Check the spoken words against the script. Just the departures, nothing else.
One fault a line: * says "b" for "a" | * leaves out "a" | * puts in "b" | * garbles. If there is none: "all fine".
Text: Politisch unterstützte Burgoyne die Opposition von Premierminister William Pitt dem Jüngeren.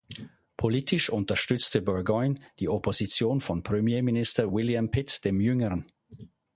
all fine